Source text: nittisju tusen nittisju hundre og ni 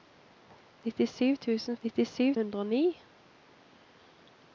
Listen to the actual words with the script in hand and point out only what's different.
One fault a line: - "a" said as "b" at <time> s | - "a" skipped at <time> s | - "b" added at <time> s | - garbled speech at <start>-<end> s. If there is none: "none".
none